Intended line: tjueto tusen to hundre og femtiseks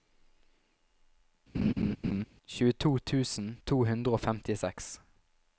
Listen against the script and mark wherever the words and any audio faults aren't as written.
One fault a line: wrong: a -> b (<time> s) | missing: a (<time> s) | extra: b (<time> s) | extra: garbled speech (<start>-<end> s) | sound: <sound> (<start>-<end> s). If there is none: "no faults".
sound: laugh (1.5-2.3 s)